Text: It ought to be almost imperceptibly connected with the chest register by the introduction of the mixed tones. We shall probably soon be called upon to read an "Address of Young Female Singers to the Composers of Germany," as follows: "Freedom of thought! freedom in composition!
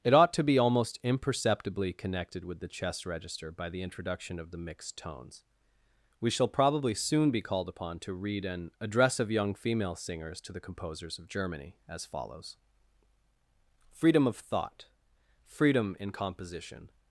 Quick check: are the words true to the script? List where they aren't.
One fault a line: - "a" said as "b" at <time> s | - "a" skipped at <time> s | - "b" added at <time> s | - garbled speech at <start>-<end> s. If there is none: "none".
none